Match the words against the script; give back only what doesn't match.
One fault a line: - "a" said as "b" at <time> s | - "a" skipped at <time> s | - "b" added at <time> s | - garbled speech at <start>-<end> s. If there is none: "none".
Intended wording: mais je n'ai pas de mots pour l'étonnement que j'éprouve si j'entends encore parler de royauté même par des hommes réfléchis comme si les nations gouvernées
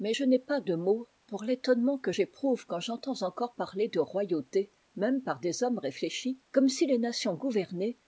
- "si" said as "quand" at 2.7 s